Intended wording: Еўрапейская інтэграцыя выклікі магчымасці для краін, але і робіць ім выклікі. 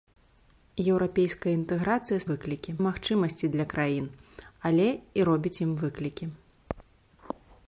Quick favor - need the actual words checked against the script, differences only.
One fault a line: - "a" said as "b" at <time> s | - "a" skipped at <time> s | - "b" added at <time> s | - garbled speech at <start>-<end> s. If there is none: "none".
none